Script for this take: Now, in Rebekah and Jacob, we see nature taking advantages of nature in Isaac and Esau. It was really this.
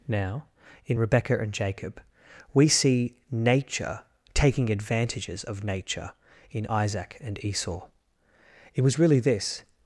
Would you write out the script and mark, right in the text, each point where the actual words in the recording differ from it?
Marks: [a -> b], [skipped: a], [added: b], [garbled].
Now, in Rebekah and Jacob, we see nature taking advantages of nature in Isaac and Esau. It was really this.